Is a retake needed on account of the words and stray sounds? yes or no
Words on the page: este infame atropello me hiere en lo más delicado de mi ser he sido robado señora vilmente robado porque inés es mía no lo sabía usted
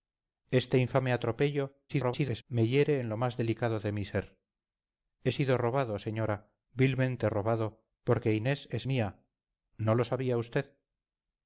yes